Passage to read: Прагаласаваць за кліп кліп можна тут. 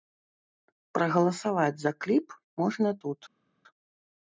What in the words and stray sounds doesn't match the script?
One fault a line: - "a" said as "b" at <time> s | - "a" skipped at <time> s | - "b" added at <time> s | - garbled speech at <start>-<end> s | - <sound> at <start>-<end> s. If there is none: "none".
- "кліп" skipped at 2.3 s